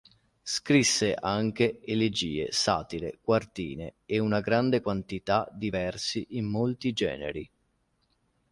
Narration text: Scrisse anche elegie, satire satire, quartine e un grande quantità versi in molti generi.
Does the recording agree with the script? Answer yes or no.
no